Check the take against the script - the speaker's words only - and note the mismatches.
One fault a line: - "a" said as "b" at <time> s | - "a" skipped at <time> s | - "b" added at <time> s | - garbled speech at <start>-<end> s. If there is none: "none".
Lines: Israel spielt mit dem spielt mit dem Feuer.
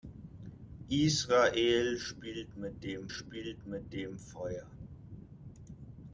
none